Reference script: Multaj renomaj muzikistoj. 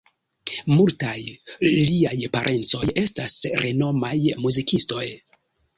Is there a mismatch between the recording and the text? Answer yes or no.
yes